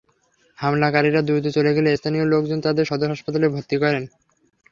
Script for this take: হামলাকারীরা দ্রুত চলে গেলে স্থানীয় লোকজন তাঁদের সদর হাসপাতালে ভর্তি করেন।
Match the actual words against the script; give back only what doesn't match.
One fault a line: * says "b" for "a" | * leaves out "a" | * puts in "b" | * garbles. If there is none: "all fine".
all fine